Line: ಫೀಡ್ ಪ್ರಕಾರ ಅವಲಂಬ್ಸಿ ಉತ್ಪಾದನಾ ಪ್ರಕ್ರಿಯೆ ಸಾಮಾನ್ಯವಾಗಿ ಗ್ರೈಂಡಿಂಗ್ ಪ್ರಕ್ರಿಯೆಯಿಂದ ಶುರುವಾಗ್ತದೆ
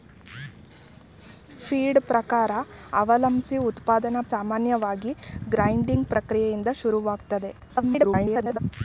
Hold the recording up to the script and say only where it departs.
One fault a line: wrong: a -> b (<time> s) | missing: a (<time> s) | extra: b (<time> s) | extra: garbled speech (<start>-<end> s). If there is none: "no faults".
missing: ಪ್ರಕ್ರಿಯೆ (4.2 s)
extra: garbled speech (7.6-8.6 s)